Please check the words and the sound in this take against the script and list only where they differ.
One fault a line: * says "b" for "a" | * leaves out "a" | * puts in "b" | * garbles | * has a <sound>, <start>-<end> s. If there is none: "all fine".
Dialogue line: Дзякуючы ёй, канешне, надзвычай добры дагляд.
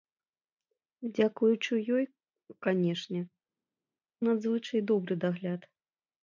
all fine